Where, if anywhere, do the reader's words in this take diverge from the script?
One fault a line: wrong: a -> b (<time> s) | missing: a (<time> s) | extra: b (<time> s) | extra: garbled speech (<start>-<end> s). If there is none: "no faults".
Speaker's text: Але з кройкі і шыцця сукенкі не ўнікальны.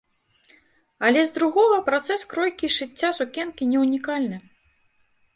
extra: другога працэс (1.4 s)